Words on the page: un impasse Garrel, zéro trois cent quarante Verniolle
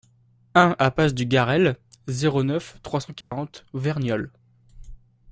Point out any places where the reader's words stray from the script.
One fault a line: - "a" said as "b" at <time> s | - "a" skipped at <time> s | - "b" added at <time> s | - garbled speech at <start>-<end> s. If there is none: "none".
- "du" added at 1.1 s
- "neuf" added at 2.4 s